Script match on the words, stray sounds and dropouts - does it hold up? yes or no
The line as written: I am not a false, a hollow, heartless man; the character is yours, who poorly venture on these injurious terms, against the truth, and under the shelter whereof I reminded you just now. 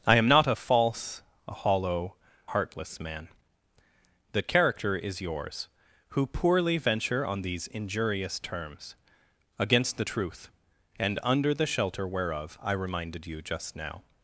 yes